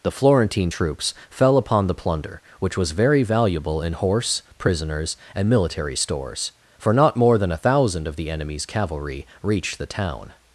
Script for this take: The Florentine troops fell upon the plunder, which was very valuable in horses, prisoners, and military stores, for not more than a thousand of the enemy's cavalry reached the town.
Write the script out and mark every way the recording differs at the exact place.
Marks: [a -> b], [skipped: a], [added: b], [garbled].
The Florentine troops fell upon the plunder, which was very valuable in [horses, -> horse] prisoners, and military stores, for not more than a thousand of the enemy's cavalry reached the town.